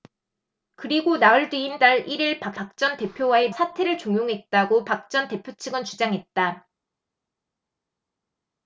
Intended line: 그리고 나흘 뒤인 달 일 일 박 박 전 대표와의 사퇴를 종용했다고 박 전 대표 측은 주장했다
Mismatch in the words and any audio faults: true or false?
false